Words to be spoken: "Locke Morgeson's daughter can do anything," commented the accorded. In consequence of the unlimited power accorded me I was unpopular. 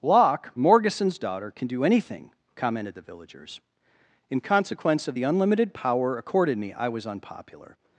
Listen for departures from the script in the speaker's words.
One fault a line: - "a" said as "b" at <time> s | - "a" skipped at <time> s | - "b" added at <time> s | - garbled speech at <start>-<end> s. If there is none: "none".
- "accorded" said as "villagers" at 3.0 s